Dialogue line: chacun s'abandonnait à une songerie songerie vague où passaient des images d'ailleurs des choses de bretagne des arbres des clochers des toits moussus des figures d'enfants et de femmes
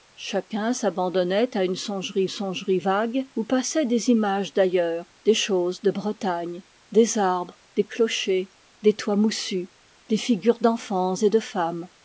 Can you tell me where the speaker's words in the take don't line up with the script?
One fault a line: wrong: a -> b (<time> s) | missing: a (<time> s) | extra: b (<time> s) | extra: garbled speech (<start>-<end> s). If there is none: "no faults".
no faults